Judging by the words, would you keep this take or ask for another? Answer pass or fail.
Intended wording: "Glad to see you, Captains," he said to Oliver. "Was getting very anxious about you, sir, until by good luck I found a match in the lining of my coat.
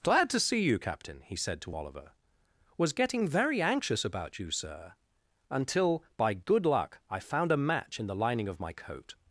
fail